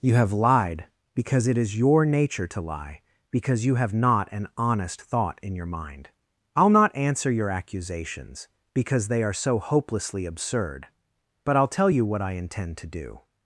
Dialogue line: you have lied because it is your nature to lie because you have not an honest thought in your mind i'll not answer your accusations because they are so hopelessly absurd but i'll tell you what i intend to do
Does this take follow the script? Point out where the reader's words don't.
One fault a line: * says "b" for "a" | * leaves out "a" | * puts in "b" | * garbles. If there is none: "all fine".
all fine